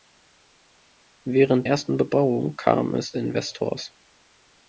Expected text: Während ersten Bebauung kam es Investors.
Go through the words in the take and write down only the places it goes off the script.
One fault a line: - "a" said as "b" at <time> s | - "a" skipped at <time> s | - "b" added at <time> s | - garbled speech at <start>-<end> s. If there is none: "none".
none